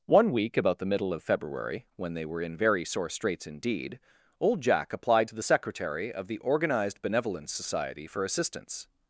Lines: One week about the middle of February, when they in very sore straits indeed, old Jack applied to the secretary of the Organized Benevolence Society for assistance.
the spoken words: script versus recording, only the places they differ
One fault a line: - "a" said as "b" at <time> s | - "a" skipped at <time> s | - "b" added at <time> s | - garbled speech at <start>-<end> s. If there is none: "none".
- "were" added at 2.2 s